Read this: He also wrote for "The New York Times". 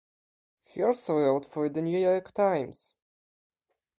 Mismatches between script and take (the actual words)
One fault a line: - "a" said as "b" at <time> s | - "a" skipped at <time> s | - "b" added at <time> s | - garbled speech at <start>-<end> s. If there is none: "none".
none